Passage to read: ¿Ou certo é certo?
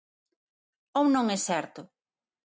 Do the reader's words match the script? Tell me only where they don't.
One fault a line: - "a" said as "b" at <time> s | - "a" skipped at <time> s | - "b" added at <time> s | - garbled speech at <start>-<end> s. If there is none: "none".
- "certo" said as "non" at 1.1 s